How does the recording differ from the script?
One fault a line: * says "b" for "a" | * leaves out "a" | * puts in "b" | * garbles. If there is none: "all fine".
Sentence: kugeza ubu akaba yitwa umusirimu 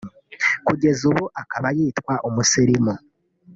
all fine